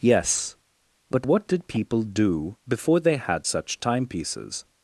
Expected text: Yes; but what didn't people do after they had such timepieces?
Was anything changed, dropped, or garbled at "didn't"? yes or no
yes